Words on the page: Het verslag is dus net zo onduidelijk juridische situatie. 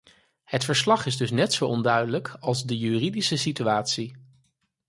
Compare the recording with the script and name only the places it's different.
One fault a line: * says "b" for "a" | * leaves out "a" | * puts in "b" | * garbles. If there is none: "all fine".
* puts in "als de"